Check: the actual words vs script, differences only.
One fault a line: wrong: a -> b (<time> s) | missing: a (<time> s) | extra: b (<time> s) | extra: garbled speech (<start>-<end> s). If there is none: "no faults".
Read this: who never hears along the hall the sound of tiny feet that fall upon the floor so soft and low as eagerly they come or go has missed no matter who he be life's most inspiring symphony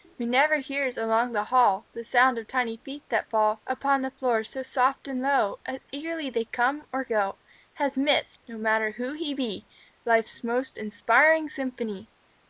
no faults